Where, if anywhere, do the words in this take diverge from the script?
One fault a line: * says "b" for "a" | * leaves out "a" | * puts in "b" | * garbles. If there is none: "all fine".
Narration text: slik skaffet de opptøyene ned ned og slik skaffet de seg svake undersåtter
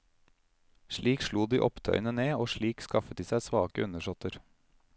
* says "slo" for "skaffet"
* leaves out "ned"